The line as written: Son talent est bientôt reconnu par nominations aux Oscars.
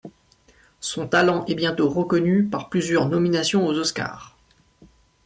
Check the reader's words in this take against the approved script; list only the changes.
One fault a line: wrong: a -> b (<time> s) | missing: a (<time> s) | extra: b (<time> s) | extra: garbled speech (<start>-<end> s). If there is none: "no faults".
extra: plusieurs (2.7 s)